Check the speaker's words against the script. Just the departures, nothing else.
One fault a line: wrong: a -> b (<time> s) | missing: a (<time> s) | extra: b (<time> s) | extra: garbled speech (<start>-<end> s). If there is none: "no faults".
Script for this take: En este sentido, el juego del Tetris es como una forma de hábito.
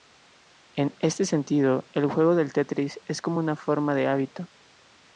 no faults